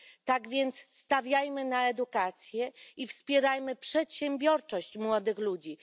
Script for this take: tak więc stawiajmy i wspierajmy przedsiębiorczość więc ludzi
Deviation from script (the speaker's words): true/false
true